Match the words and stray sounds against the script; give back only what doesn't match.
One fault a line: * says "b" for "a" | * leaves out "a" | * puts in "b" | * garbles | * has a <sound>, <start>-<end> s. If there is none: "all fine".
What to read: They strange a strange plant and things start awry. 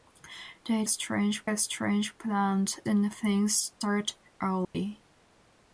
* has a dropout, 4.6-4.7 s